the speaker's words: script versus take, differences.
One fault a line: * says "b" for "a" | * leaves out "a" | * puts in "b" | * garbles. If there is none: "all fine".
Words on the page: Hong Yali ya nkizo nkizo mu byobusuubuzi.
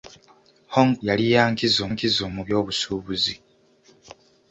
all fine